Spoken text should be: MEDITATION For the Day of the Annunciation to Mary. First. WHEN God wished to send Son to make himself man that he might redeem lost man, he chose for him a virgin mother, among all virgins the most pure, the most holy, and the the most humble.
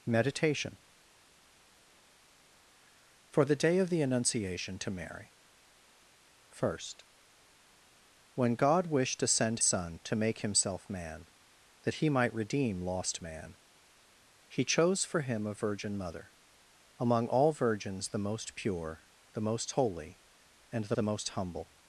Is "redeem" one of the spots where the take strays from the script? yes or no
no